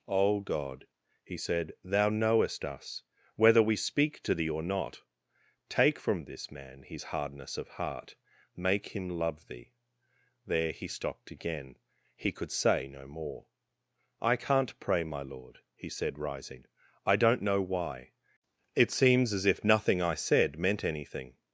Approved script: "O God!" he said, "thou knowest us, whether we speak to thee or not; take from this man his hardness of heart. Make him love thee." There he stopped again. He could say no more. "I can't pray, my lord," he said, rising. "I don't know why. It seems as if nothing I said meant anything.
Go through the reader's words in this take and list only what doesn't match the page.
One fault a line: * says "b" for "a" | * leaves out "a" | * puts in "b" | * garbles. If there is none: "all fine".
all fine